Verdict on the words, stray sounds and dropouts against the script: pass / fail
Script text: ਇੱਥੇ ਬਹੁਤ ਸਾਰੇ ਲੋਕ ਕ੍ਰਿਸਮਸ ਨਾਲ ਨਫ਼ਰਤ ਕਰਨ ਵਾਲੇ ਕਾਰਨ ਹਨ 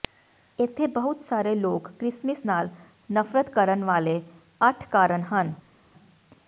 fail